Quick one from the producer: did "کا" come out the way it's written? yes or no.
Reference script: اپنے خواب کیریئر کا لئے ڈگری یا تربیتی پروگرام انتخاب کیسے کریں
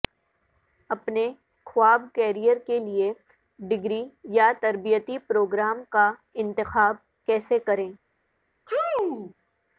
no